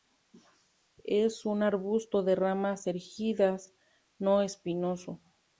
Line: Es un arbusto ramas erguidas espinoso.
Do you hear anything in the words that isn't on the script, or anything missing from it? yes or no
yes